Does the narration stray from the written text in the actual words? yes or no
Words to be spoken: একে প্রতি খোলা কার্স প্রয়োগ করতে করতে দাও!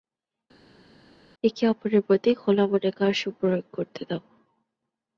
yes